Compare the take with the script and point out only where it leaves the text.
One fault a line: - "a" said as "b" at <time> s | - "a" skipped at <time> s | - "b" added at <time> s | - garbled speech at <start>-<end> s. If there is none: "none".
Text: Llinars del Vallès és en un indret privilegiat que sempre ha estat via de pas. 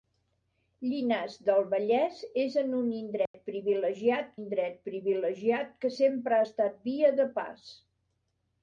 - "indret privilegiat" added at 4.4 s